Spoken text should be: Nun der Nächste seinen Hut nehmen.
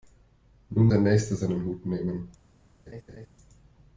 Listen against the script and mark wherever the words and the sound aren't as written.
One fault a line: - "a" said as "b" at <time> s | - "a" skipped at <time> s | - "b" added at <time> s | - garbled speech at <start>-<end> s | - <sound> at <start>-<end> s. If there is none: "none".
- laugh at 2.9-3.3 s